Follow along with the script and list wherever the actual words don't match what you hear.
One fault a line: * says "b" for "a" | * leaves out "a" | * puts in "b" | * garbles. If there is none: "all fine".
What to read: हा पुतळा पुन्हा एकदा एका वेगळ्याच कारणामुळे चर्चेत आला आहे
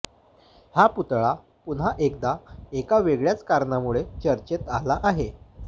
all fine